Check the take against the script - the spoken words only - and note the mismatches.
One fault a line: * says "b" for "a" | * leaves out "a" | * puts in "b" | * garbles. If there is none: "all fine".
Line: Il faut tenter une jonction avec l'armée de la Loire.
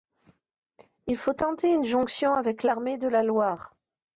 all fine